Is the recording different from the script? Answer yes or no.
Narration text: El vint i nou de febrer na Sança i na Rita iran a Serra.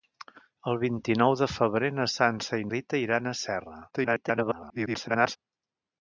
yes